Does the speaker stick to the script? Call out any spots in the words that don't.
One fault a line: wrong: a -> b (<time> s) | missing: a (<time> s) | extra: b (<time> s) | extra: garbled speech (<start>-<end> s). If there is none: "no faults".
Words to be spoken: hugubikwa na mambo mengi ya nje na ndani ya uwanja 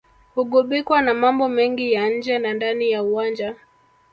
no faults